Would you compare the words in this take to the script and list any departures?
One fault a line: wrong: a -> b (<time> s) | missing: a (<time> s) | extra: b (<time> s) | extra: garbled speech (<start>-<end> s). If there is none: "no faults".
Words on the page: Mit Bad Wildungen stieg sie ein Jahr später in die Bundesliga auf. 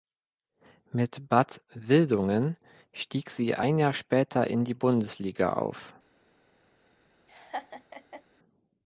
no faults